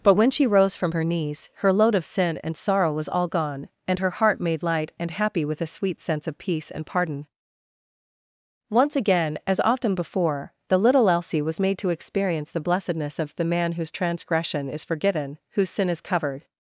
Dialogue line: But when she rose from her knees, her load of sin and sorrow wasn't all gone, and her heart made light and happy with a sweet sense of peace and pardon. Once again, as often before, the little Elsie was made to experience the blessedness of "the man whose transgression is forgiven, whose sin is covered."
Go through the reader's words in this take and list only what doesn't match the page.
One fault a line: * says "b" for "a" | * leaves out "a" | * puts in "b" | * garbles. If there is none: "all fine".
* says "was" for "wasn't"